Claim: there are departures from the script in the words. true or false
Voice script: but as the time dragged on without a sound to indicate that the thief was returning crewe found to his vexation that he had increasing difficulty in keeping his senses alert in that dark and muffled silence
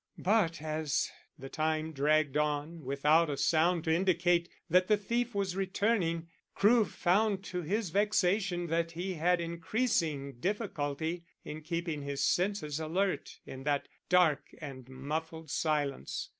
false